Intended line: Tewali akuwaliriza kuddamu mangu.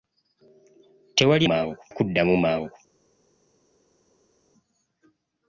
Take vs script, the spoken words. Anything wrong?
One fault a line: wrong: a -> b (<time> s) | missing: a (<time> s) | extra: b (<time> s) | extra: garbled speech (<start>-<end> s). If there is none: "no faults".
wrong: akuwaliriza -> mangu (1.4 s)